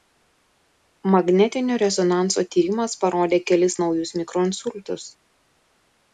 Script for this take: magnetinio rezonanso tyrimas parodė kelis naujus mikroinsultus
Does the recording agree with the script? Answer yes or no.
yes